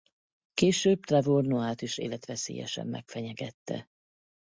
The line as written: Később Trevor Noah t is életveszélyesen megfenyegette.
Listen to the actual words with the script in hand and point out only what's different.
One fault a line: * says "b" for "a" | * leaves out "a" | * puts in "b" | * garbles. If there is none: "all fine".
all fine